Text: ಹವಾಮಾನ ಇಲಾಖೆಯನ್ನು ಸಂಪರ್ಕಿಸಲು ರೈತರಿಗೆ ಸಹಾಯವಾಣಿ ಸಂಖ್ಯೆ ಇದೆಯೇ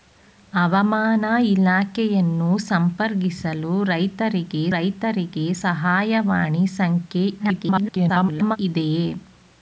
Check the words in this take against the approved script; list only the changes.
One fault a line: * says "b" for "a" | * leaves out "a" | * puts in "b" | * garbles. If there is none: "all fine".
* puts in "ರೈತರಿಗೆ"
* garbles